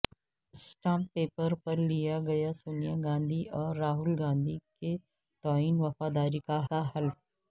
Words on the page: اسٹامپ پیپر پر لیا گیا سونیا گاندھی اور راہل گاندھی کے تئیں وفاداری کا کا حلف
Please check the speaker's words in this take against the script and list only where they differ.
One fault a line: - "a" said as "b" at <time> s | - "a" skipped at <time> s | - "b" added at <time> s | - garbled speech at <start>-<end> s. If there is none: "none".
none